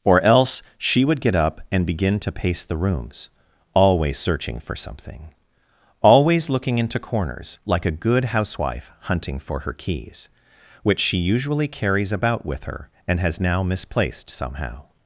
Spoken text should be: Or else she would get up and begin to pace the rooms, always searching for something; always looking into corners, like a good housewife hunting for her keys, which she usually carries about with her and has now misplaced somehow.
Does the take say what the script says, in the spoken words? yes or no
yes